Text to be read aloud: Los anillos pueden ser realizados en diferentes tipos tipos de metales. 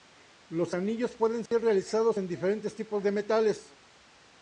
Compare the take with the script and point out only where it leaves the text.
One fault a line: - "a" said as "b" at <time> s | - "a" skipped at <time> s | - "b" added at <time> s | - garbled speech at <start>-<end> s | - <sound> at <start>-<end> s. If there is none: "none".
- dropout at 1.5-1.5 s
- "tipos" skipped at 3.0 s